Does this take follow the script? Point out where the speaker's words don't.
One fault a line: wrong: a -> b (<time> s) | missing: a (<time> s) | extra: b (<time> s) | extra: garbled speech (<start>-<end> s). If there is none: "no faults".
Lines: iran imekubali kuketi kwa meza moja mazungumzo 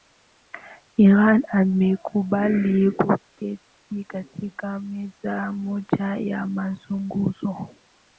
wrong: kwa -> katika (4.1 s)
extra: ya (6.2 s)